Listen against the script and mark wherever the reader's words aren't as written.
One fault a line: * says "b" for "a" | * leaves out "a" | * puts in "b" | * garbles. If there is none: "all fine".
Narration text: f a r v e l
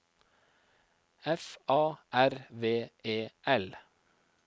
all fine